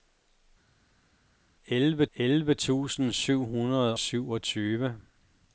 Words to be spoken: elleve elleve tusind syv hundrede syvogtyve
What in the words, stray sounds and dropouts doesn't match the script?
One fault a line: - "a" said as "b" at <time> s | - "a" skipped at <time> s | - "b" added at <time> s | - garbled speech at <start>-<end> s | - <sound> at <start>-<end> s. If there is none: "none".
none